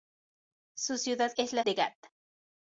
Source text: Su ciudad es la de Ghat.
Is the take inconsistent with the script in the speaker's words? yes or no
no